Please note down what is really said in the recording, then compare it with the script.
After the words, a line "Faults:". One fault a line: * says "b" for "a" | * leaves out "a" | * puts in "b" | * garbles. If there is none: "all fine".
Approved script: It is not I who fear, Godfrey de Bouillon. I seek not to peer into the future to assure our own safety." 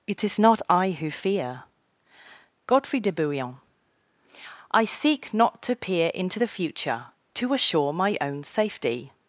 It is not I who fear, Godfrey de Bouillon. I seek not to peer into the future to assure my own safety."
Faults:
* says "my" for "our"